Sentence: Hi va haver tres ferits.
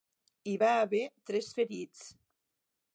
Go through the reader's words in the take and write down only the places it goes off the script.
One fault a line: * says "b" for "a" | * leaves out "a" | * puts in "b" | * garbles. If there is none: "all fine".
all fine